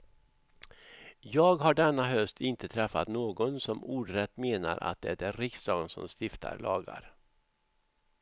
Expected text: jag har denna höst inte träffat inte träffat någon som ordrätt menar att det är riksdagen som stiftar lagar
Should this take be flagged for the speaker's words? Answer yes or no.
yes